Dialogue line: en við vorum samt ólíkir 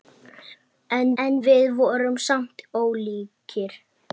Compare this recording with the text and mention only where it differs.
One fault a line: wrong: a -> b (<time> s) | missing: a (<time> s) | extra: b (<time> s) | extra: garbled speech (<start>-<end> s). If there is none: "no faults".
extra: en (1.2 s)